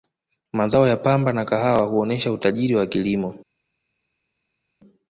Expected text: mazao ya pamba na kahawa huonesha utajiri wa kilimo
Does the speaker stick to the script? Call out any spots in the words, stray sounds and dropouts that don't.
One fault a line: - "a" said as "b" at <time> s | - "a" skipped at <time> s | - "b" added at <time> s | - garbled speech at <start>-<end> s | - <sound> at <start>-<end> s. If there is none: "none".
none